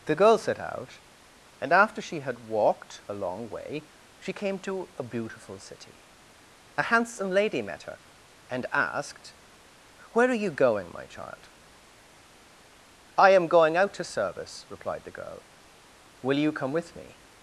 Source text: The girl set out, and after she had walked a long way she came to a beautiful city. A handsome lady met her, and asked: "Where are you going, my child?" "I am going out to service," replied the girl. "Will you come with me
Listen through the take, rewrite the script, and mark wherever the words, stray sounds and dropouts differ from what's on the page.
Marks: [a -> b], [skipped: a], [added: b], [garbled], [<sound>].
The girl set out, and after she had walked a long way she came to a beautiful city. A handsome lady met her, and asked: "Where are you going, my child?" "I am going out to service," replied the girl. "Will you come with me